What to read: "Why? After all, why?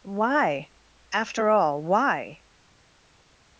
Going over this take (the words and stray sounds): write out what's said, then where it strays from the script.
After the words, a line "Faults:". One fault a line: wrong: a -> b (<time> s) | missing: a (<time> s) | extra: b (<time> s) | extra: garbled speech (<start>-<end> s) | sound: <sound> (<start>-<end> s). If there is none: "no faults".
"Why? After all, why?
Faults:
no faults